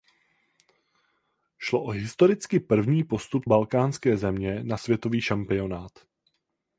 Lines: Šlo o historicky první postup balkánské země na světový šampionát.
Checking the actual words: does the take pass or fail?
pass